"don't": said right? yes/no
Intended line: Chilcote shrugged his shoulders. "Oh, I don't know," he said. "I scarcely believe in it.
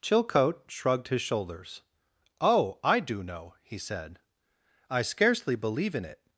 no